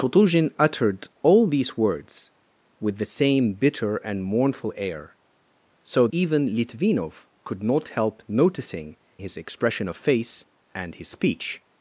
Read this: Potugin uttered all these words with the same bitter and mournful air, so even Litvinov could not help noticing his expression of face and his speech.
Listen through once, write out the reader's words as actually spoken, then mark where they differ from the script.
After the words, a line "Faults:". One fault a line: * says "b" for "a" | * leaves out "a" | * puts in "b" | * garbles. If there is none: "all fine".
Potugin uttered all these words with the same bitter and mournful air, so even Litvinov could not help noticing his expression of face and his speech.
Faults:
all fine